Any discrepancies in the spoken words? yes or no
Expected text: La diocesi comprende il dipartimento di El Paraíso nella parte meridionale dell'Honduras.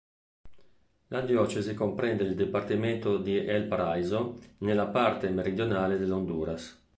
no